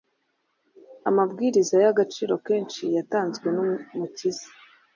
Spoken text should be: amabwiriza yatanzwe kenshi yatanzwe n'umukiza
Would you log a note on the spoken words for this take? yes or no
yes